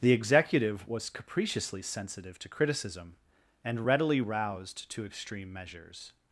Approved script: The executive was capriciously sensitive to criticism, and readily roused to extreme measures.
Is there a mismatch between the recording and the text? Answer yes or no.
no